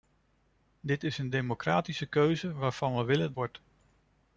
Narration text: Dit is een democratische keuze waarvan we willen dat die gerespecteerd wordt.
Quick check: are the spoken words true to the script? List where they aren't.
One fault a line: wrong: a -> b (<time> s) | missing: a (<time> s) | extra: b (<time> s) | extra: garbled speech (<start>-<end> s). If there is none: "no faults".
missing: dat die gerespecteerd (3.3 s)